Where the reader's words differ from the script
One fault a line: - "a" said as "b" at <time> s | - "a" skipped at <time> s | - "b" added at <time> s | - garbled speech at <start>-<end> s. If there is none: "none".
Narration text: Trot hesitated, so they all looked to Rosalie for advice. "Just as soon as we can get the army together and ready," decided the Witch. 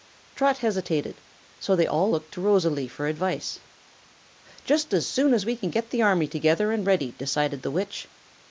none